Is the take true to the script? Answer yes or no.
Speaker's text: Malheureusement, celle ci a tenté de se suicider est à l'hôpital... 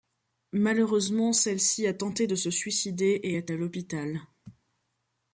no